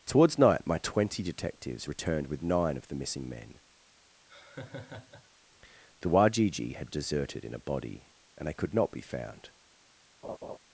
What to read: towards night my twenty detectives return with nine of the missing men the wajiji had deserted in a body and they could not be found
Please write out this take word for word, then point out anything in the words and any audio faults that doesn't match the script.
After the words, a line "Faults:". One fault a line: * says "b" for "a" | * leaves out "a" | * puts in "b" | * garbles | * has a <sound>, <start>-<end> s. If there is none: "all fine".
towards night my twenty detectives returned with nine of the missing men the wajiji had deserted in a body and they could not be found
Faults:
* says "returned" for "return"
* has a laugh, 4.3-5.3 s
* has a laugh, 10.2-10.6 s